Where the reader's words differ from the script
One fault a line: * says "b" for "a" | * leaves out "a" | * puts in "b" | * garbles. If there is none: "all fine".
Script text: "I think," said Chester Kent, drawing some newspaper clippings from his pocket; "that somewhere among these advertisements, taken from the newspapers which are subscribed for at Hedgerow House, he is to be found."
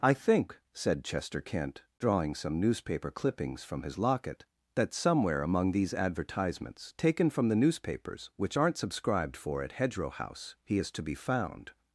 * says "locket" for "pocket"
* says "aren't" for "are"